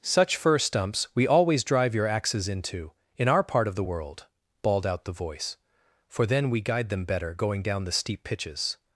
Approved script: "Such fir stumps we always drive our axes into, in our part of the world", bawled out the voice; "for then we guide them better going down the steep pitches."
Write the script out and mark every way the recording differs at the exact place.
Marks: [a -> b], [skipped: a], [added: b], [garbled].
"Such fir stumps we always drive [our -> your] axes into, in our part of the world", bawled out the voice; "for then we guide them better going down the steep pitches."